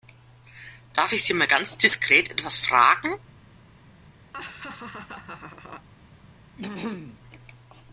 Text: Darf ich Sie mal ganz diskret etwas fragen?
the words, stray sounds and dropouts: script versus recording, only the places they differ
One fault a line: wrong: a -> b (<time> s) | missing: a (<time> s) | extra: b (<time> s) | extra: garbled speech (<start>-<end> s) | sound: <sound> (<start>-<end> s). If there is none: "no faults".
sound: laugh (4.3-5.9 s)
sound: throat clearing (6.6-7.2 s)